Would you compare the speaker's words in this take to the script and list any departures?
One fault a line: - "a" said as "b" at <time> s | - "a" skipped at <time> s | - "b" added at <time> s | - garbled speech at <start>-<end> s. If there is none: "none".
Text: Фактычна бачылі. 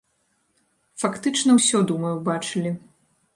- "ўсё думаю" added at 1.6 s